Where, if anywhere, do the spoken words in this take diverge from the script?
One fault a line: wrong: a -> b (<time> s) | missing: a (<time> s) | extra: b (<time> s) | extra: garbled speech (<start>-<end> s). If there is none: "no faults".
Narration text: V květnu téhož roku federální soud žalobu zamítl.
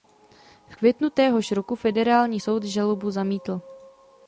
no faults